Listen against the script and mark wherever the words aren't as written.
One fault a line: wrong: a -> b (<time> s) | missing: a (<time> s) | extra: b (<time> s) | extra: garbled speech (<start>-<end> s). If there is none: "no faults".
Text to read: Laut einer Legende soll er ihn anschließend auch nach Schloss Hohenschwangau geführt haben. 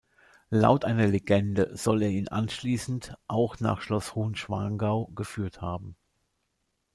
no faults